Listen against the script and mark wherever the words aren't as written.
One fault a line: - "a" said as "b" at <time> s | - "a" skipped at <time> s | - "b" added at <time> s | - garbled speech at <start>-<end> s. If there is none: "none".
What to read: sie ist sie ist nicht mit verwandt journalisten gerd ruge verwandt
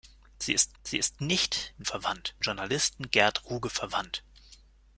none